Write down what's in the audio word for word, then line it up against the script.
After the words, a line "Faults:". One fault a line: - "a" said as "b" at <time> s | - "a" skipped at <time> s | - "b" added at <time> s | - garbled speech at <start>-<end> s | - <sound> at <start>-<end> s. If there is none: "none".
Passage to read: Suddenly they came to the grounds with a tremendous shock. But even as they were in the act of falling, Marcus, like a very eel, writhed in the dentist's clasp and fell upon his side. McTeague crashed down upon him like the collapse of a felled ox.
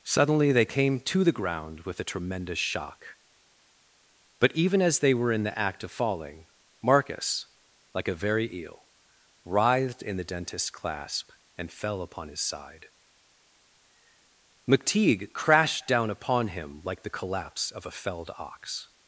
Suddenly they came to the ground with a tremendous shock. But even as they were in the act of falling, Marcus, like a very eel, writhed in the dentist's clasp and fell upon his side. McTeague crashed down upon him like the collapse of a felled ox.
Faults:
- "grounds" said as "ground" at 1.3 s